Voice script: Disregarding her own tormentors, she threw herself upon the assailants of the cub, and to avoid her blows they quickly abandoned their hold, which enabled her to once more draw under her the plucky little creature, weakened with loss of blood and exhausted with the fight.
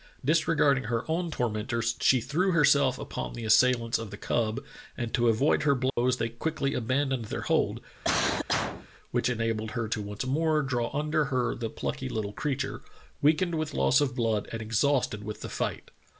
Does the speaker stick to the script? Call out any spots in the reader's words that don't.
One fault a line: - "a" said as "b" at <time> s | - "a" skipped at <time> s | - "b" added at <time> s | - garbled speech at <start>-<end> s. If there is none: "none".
none